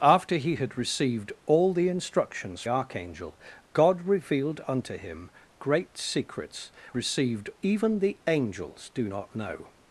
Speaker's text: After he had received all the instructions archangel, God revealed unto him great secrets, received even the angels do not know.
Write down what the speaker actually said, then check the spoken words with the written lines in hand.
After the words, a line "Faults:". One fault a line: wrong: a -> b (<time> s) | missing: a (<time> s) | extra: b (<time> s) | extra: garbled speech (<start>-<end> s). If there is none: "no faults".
After he had received all the instructions archangel, God revealed unto him great secrets, received even the angels do not know.
Faults:
no faults